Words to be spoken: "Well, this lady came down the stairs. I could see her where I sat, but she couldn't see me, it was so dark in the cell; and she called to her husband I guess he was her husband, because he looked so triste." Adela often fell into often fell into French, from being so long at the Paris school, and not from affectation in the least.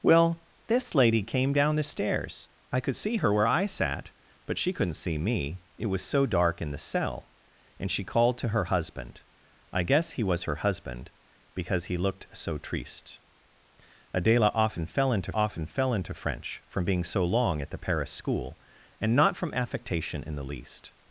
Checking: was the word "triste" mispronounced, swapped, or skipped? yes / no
no